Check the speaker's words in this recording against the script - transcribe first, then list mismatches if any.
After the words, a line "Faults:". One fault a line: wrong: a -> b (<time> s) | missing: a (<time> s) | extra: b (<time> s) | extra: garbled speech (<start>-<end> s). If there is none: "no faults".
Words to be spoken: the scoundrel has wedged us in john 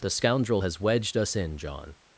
the scoundrel has wedged us in john
Faults:
no faults